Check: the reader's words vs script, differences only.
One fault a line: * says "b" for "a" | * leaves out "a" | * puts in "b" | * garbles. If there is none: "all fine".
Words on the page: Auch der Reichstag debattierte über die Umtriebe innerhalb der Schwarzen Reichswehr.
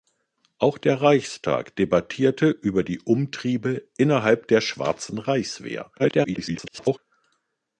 * garbles